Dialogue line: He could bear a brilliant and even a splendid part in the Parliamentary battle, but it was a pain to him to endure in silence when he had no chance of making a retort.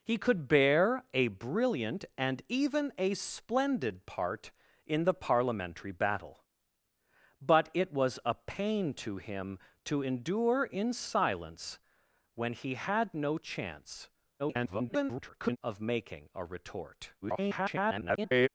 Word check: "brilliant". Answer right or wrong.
right